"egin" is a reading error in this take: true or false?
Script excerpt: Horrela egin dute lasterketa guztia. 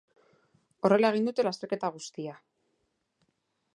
false